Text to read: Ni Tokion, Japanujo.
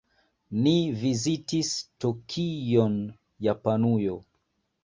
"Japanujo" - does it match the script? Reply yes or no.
yes